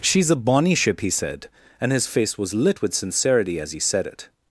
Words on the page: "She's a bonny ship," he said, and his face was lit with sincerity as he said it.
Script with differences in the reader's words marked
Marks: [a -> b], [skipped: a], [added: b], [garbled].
"She's a bonny ship," he said, and his face was lit with sincerity as he said it.